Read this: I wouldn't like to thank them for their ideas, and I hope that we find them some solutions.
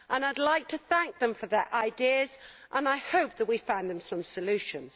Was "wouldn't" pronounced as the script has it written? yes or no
no